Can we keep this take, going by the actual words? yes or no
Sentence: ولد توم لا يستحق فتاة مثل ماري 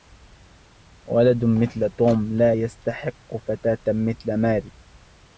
no